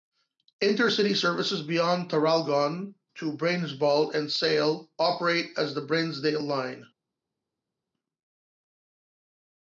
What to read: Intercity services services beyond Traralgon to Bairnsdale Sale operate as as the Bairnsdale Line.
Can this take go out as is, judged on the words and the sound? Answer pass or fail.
fail